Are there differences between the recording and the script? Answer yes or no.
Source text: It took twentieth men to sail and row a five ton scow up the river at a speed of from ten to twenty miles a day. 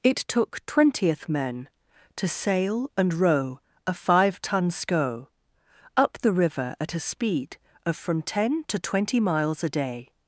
no